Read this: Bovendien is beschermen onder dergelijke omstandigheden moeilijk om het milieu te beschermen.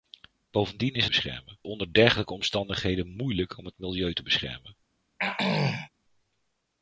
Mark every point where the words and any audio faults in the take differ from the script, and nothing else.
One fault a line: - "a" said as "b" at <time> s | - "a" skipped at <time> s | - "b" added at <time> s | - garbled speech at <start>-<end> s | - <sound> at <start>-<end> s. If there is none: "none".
- throat clearing at 5.2-5.9 s